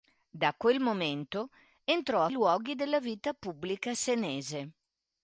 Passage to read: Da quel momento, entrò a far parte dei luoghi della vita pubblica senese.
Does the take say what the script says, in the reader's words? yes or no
no